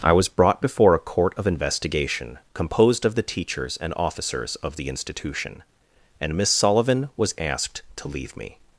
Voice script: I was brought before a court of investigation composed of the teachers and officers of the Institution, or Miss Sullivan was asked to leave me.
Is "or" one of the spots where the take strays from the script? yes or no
yes